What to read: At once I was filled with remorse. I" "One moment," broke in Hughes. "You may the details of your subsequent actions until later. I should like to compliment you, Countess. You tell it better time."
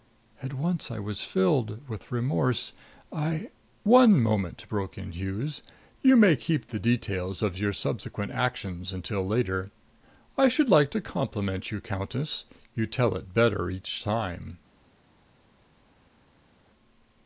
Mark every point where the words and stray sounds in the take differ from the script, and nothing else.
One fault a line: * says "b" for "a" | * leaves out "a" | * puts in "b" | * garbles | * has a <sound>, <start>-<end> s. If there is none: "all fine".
* puts in "keep"
* puts in "each"